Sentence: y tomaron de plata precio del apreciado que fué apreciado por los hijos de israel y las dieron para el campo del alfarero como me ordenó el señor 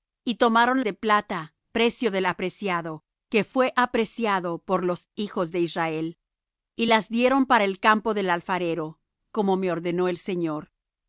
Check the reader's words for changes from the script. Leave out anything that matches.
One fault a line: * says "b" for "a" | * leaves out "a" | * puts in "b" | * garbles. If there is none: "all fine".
all fine